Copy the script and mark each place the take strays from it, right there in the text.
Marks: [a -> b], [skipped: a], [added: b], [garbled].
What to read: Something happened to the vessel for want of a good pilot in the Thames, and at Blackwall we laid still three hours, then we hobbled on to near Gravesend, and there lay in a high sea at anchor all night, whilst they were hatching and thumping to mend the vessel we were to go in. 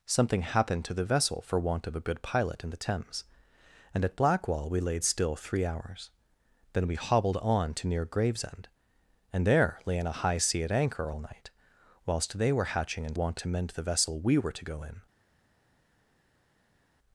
Something happened to the vessel for want of a good pilot in the Thames, and at Blackwall we laid still three hours, then we hobbled on to near Gravesend, and there lay in a high sea at anchor all night, whilst they were hatching and [thumping -> want] to mend the vessel we were to go in.